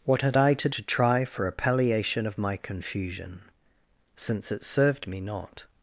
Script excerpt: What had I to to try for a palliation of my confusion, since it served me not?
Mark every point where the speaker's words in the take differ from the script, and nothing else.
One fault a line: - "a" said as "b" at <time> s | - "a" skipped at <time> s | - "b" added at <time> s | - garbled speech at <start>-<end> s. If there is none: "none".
none